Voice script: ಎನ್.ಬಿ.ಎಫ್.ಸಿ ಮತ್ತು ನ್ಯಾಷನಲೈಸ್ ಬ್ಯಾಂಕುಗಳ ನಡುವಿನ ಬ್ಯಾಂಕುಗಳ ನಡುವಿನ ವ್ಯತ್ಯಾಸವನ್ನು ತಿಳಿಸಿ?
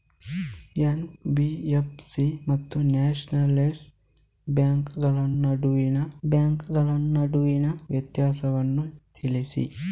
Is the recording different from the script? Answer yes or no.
no